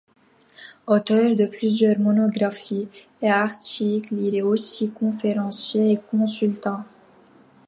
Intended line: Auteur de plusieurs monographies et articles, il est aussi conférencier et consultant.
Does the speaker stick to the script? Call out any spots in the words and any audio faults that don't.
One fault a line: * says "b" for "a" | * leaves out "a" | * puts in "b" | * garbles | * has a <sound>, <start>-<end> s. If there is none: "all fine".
all fine